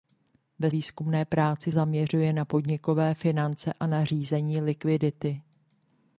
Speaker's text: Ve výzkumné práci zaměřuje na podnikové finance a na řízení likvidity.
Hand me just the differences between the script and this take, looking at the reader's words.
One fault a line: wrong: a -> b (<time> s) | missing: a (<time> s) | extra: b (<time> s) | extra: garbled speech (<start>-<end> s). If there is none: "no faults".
no faults